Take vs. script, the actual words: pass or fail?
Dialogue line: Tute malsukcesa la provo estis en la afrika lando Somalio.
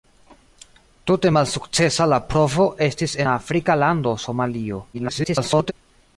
fail